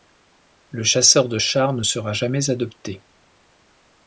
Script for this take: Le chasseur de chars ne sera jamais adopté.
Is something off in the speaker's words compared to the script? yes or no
no